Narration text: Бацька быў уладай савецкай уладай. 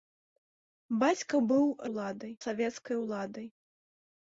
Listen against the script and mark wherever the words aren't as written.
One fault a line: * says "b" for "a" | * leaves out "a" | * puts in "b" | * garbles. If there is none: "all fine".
all fine